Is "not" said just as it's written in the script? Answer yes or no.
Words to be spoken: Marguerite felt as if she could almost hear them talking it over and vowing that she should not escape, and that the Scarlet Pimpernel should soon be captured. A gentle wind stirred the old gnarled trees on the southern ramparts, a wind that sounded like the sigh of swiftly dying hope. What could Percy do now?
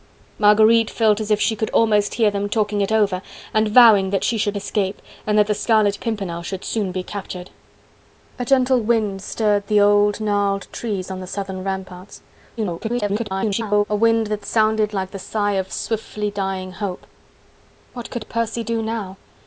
no